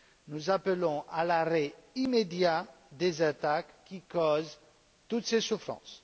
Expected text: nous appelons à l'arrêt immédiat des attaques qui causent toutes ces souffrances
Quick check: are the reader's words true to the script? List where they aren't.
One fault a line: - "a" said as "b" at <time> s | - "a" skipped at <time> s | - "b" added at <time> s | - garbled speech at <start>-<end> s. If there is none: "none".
none